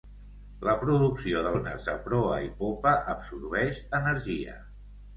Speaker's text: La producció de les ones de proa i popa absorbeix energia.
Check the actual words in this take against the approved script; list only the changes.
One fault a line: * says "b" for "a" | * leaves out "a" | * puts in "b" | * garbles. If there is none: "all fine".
* leaves out "les"